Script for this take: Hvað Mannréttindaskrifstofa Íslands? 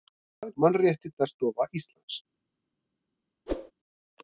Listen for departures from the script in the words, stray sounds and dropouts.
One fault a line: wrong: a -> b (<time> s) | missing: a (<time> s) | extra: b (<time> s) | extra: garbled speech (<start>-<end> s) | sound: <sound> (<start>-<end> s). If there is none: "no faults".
sound: whoosh (3.5-3.7 s)